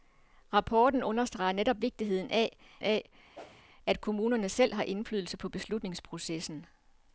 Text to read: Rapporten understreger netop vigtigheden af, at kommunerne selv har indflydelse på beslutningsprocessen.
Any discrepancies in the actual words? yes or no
yes